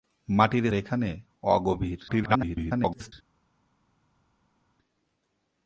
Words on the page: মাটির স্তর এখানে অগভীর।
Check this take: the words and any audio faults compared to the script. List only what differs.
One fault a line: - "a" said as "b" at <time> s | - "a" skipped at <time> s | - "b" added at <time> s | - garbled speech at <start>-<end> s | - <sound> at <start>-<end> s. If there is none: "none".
- "স্তর" skipped at 0.7 s
- garbled speech at 2.1-3.1 s